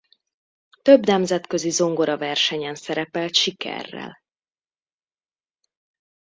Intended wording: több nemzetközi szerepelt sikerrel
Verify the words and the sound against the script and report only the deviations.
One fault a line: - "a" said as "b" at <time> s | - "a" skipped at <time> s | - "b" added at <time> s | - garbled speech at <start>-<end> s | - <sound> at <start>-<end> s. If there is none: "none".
- "zongoraversenyen" added at 1.7 s